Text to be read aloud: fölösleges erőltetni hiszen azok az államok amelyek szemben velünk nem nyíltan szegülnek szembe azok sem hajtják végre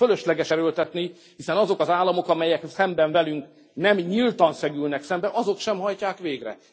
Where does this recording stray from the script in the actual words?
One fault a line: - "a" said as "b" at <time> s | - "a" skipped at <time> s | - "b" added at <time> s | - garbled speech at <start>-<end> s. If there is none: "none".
none